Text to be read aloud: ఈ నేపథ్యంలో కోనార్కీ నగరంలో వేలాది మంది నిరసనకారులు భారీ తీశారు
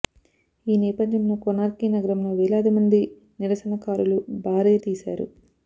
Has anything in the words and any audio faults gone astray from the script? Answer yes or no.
no